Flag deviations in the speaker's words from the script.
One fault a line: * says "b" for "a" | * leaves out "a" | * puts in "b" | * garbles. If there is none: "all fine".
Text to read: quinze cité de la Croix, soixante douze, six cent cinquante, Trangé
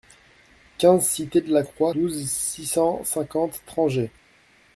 * leaves out "soixante"